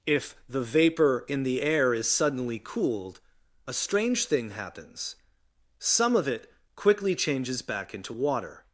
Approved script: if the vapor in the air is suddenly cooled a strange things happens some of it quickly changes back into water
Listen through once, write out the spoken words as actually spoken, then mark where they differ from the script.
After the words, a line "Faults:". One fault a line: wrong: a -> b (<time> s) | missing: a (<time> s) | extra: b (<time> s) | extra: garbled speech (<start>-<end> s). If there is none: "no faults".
if the vapor in the air is suddenly cooled a strange thing happens some of it quickly changes back into water
Faults:
wrong: things -> thing (4.2 s)